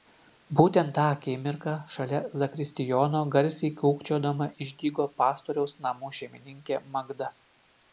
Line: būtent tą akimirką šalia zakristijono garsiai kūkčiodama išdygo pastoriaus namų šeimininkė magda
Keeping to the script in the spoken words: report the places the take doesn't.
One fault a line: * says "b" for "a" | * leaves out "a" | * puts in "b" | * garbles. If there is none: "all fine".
all fine